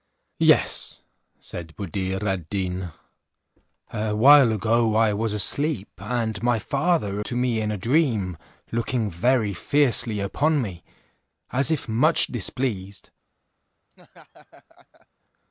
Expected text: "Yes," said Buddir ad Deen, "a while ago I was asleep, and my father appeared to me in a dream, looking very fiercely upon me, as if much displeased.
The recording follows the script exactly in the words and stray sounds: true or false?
false